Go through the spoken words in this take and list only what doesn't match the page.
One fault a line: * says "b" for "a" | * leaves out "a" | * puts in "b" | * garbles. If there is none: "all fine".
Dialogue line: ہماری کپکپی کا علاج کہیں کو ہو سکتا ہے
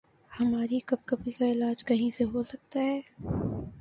* says "سے" for "کو"